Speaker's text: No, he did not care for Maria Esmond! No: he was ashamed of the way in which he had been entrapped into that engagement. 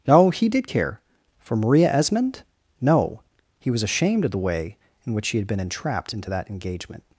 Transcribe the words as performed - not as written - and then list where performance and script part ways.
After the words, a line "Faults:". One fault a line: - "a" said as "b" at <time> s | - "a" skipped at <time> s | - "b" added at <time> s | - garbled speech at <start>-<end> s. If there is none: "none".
No, he did care for Maria Esmond! No: he was ashamed of the way in which he had been entrapped into that engagement.
Faults:
- "not" skipped at 0.7 s